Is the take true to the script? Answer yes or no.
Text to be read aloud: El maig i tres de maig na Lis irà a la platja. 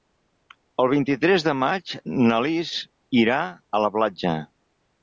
no